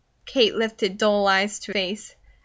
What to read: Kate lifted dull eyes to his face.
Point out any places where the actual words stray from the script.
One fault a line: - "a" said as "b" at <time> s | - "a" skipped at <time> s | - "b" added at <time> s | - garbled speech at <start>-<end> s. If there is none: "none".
- "his" skipped at 1.7 s